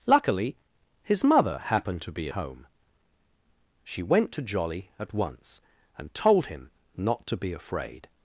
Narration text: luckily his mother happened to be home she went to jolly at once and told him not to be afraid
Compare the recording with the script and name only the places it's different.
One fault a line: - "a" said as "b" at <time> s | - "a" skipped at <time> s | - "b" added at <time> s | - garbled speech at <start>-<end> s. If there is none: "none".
none